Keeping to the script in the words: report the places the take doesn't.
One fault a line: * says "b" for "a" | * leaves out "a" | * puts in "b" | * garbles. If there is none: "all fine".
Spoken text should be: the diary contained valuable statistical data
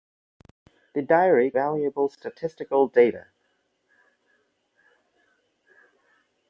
* leaves out "contained"